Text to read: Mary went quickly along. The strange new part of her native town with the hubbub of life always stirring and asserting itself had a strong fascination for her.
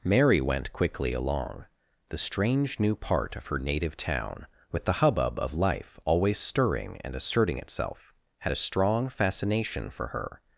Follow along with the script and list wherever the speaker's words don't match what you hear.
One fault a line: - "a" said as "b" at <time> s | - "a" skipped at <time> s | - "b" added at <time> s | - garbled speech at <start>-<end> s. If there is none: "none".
none